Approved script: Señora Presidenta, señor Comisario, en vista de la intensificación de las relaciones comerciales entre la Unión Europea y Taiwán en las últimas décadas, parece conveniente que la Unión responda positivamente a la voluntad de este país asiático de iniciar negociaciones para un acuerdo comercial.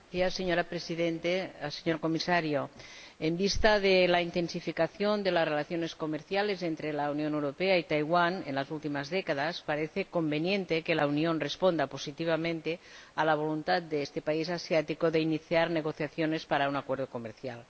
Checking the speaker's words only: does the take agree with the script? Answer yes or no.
yes